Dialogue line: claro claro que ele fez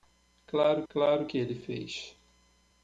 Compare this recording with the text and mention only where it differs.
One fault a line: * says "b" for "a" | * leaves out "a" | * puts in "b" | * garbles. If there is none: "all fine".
all fine